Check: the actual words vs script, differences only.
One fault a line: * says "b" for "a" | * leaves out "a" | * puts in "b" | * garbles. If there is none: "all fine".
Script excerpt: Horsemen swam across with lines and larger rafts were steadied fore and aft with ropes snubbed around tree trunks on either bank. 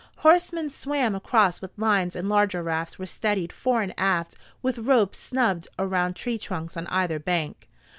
all fine